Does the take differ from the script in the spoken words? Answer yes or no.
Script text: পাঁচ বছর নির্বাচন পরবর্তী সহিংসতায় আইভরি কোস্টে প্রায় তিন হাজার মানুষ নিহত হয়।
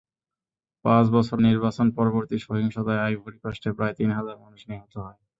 no